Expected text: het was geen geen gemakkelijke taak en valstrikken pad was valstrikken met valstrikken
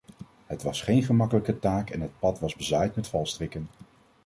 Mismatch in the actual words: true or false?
true